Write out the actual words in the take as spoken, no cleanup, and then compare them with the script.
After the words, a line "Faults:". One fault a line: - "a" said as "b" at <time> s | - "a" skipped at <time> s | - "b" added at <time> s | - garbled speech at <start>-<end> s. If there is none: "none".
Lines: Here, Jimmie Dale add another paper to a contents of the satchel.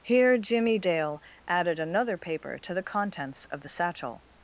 Here, Jimmie Dale added another paper to the contents of the satchel.
Faults:
- "add" said as "added" at 1.5 s
- "a" said as "the" at 2.7 s